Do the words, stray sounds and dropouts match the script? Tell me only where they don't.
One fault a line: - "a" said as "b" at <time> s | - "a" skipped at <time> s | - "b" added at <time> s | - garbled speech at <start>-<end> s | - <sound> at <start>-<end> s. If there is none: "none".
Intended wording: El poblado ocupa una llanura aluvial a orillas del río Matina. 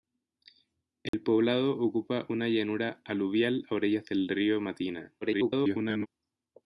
- dropout at 1.1-1.1 s
- garbled speech at 5.2-6.1 s